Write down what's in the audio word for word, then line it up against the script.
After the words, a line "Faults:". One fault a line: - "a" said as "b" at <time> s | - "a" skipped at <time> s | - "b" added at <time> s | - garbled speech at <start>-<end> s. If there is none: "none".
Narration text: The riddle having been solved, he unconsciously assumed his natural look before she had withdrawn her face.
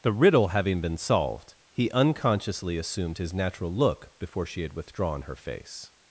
The riddle having been solved, he unconsciously assumed his natural look before she had withdrawn her face.
Faults:
none